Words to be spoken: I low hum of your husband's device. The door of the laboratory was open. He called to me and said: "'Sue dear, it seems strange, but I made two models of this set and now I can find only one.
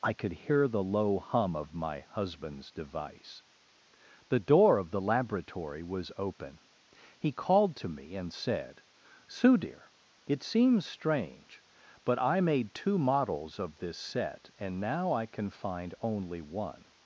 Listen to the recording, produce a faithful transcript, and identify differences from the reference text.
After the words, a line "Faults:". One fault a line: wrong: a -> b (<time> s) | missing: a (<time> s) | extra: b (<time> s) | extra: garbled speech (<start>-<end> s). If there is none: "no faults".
I could hear the low hum of my husband's device. The door of the laboratory was open. He called to me and said: "'Sue dear, it seems strange, but I made two models of this set and now I can find only one.
Faults:
extra: could hear the (0.1 s)
wrong: your -> my (1.8 s)